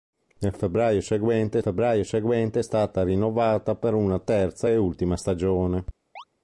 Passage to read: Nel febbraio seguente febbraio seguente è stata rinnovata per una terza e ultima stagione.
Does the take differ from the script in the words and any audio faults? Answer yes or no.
yes